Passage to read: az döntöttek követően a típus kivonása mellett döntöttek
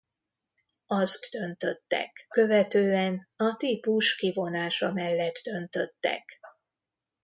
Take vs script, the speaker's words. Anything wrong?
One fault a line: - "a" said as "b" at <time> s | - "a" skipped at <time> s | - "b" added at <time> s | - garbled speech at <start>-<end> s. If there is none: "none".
none